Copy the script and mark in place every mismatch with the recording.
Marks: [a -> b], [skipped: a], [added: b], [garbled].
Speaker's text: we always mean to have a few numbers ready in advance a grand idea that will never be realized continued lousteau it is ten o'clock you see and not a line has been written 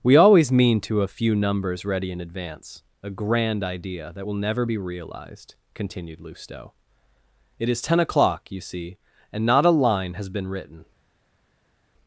we always mean to [skipped: have] a few numbers ready in advance a grand idea that will never be realized continued lousteau it is ten o'clock you see and not a line has been written